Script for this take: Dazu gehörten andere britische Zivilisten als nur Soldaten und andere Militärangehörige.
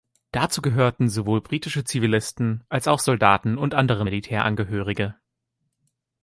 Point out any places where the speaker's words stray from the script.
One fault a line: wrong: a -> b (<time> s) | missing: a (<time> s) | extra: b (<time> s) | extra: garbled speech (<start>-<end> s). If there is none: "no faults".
wrong: andere -> sowohl (1.1 s)
wrong: nur -> auch (2.9 s)